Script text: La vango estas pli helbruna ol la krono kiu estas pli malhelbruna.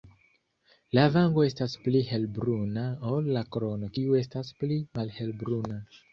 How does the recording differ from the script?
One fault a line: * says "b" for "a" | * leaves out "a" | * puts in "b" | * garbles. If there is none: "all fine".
all fine